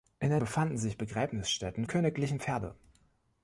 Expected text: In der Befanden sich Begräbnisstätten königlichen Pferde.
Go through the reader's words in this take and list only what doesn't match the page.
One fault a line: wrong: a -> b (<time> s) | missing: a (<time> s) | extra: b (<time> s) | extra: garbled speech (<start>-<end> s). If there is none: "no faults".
no faults